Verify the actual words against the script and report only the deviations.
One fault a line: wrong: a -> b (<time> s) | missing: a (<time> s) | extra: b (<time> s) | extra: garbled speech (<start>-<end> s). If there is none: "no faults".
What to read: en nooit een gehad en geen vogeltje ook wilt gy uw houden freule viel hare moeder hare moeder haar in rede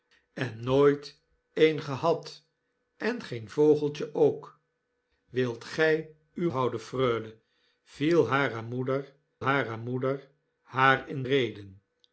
no faults